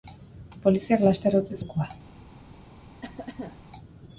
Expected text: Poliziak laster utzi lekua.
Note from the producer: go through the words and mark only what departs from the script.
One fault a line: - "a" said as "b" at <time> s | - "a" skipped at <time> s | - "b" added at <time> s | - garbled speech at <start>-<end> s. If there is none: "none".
none